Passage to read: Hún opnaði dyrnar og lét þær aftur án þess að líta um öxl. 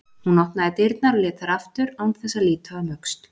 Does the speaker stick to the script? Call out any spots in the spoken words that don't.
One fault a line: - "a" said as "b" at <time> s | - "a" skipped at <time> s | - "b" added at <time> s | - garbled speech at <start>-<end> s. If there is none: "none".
none